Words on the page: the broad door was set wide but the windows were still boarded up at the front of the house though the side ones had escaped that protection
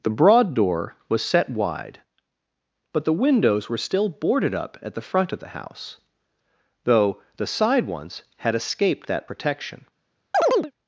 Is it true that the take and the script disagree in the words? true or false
false